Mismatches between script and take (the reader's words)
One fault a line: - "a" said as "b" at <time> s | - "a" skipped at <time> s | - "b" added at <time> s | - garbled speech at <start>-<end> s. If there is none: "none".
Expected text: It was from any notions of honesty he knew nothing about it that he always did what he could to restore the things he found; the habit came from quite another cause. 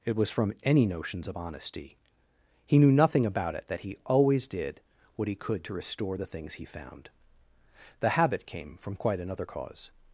none